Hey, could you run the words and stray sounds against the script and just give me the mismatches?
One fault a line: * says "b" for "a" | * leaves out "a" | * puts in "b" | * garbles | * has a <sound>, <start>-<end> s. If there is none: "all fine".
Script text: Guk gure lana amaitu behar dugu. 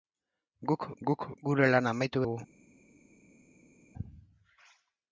* puts in "guk"
* leaves out "behar"